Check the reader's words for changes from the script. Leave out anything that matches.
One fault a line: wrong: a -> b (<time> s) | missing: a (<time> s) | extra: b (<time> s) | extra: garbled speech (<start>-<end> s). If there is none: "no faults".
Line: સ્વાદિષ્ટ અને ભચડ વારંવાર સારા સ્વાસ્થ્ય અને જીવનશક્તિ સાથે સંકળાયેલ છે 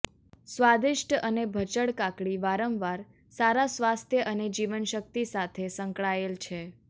extra: કાકડી (2.0 s)